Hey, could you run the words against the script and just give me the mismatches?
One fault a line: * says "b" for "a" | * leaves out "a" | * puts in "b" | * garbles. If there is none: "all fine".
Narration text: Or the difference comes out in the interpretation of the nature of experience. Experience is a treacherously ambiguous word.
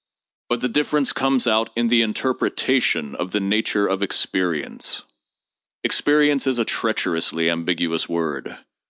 * says "But" for "Or"